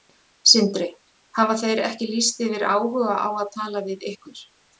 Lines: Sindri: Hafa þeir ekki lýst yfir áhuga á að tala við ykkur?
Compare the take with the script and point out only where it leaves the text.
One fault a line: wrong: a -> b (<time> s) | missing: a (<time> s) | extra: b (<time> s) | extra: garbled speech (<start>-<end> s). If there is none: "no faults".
no faults